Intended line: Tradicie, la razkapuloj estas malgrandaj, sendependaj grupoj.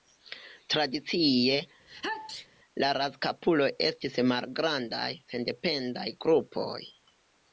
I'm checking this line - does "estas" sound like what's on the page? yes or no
no